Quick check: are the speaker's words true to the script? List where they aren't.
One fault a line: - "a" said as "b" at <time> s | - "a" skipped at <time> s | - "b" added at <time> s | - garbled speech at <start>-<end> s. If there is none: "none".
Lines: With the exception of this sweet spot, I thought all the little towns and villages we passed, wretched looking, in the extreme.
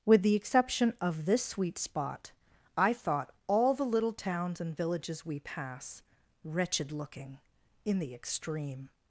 - "passed" said as "pass" at 5.4 s